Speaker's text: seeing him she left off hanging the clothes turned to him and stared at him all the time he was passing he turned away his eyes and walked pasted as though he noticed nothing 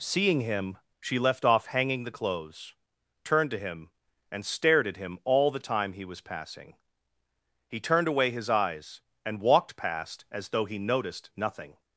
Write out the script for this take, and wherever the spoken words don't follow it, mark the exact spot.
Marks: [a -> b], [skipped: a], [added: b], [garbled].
seeing him she left off hanging the clothes turned to him and stared at him all the time he was passing he turned away his eyes and walked [pasted -> past] as though he noticed nothing